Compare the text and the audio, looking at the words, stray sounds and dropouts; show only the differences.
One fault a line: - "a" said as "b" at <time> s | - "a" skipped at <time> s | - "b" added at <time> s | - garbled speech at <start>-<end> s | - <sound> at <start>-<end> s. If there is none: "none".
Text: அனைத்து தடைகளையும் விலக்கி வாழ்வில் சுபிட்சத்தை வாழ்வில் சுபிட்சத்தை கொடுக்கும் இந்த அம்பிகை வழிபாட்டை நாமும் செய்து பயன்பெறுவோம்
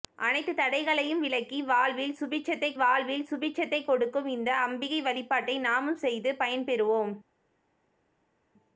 none